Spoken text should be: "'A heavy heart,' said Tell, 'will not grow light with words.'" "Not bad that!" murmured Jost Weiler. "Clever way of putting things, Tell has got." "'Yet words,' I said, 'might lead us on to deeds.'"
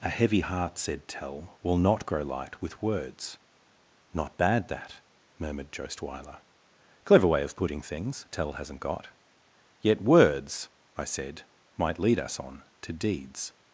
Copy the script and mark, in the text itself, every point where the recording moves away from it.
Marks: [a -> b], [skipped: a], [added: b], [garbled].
"'A heavy heart,' said Tell, 'will not grow light with words.'" "Not bad that!" murmured Jost Weiler. "Clever way of putting things, Tell [has -> hasn't] got." "'Yet words,' I said, 'might lead us on to deeds.'"